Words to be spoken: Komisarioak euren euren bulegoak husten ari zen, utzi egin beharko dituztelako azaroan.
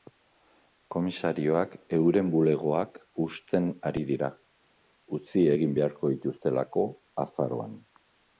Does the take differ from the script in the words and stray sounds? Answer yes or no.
yes